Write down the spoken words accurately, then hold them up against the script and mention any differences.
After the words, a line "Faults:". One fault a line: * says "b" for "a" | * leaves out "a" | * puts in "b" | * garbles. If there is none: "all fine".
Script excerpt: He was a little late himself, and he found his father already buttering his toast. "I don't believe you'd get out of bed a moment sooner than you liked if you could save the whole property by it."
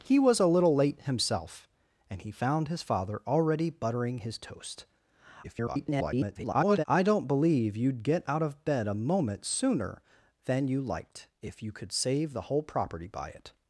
He was a little late himself, and he found his father already buttering his toast. [garbled] "I don't believe you'd get out of bed a moment sooner than you liked if you could save the whole property by it."
Faults:
* garbles